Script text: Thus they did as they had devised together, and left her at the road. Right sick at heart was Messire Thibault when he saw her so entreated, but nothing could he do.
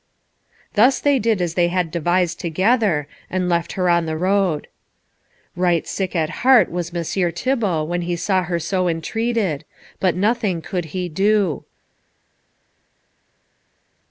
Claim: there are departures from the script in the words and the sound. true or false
true